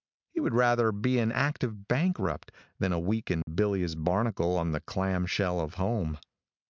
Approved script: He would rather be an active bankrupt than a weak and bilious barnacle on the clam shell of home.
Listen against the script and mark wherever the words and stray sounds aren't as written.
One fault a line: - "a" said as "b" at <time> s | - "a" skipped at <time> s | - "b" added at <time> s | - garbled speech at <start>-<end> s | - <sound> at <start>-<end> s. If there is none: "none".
- dropout at 3.4-3.5 s